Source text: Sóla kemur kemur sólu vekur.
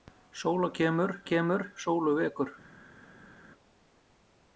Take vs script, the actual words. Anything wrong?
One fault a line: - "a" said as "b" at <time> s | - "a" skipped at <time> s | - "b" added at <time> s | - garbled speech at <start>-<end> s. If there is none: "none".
none